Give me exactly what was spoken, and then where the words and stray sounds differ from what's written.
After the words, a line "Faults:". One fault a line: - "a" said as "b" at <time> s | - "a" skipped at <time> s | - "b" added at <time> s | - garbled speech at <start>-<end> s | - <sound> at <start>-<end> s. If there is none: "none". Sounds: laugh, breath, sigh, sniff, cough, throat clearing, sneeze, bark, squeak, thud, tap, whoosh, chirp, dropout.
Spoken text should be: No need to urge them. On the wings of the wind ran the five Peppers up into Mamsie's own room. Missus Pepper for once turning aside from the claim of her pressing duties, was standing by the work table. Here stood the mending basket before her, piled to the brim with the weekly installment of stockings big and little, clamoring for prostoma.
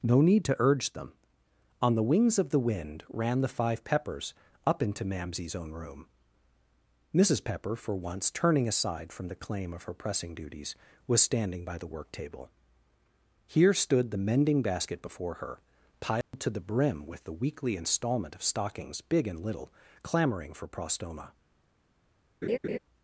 No need to urge them. On the wings of the wind ran the five Peppers up into Mamsie's own room. Missus Pepper for once turning aside from the claim of her pressing duties, was standing by the work table. Here stood the mending basket before her, piled to the brim with the weekly installment of stockings big and little, clamoring for prostoma.
Faults:
- dropout at 16.2-16.3 s
- laugh at 22.4-22.8 s